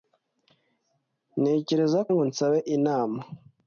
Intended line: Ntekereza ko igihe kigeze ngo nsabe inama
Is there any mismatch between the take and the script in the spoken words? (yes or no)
yes